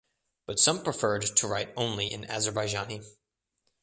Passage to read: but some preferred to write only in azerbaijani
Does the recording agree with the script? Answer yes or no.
yes